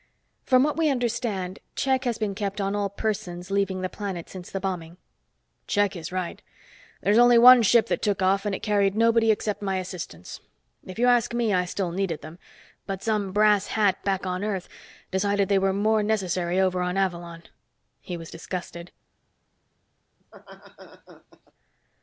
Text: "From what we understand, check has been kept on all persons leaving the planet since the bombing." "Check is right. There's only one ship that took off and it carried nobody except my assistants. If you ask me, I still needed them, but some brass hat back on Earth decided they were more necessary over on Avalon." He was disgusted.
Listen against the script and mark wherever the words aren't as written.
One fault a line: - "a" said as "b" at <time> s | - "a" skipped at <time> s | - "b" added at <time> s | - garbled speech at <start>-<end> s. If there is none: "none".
none